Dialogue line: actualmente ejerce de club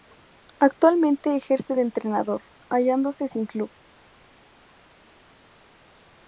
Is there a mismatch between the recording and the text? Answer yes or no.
yes